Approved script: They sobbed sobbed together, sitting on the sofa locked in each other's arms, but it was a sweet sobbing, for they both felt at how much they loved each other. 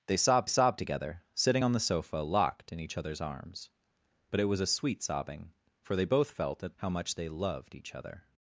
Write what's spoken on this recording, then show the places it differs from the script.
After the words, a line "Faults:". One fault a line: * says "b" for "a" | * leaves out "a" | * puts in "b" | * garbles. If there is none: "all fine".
They sobbed sobbed together, sitting on the sofa locked in each other's arms, but it was a sweet sobbing, for they both felt at how much they loved each other.
Faults:
all fine